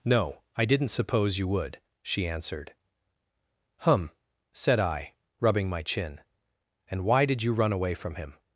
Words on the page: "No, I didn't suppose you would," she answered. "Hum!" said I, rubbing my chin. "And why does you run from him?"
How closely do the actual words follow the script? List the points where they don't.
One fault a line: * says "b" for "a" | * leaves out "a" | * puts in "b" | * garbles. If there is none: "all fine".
* says "did" for "does"
* puts in "away"